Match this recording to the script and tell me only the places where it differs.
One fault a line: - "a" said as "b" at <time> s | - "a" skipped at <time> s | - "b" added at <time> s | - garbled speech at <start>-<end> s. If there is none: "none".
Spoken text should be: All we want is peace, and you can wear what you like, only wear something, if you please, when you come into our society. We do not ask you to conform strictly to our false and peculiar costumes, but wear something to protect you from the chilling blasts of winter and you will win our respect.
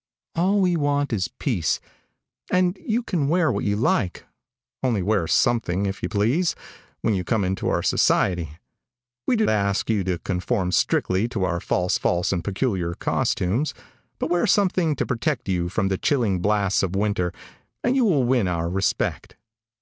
- "not" skipped at 9.4 s
- "false" added at 11.9 s